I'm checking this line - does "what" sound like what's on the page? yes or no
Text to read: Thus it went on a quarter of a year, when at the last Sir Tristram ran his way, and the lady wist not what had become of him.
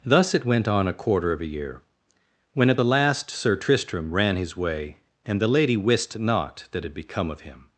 no